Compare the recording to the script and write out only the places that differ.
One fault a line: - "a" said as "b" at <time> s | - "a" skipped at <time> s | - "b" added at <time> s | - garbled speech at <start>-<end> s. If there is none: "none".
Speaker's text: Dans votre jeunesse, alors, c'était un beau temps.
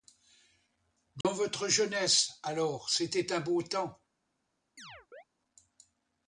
none